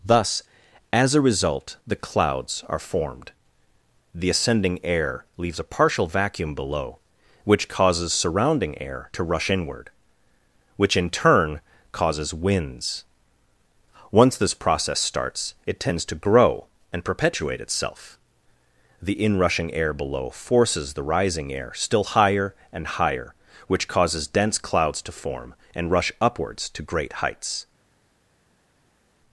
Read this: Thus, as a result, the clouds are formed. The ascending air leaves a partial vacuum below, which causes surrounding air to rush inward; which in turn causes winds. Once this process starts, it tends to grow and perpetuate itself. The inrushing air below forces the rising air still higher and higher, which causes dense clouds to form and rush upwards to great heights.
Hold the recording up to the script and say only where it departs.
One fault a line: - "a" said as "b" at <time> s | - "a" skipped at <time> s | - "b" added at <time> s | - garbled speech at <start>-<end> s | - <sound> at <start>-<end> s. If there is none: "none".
none